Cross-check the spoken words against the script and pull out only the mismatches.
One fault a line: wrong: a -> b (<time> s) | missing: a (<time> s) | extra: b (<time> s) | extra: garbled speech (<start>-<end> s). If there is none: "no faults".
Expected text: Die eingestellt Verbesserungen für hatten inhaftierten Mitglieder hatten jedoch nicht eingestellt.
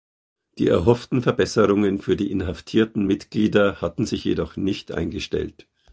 wrong: eingestellt -> erhofften (0.7 s)
wrong: hatten -> die (2.1 s)
extra: sich (4.0 s)